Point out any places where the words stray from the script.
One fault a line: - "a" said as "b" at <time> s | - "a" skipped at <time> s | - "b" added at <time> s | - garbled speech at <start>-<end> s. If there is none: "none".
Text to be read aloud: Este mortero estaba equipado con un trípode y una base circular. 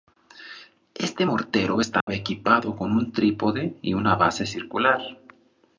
none